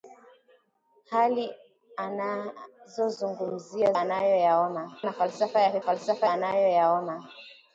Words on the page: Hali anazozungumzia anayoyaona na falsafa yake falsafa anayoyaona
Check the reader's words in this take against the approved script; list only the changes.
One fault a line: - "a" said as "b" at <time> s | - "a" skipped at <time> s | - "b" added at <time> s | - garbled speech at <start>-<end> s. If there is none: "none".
none